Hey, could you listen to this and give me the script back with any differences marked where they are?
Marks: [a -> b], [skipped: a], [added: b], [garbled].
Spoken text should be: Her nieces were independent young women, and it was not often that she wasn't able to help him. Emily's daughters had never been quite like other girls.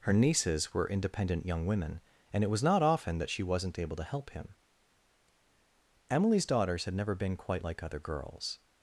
Her nieces were independent young women, and it was not often that she wasn't able to help him. Emily's daughters had never been quite like other girls.